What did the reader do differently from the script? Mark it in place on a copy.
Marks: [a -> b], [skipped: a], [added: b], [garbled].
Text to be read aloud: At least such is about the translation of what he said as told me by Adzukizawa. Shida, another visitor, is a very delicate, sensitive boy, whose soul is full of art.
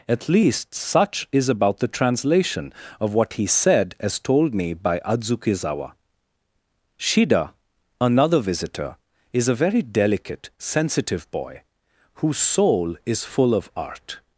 At least such is about the translation of what he said as told me by Adzukizawa. Shida, another visitor, is a very delicate, sensitive boy, whose soul is full of art.